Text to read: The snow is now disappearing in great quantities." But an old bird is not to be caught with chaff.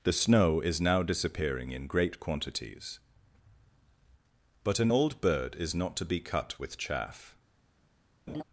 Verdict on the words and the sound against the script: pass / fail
fail